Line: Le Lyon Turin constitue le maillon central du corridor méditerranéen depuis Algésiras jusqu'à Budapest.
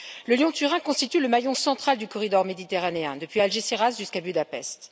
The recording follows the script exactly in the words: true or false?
true